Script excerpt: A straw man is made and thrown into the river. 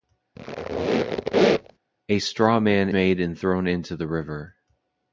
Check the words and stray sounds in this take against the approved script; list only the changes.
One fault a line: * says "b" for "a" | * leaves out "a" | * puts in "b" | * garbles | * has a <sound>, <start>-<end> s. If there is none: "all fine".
* has a squeak, 0.4-1.8 s
* leaves out "is"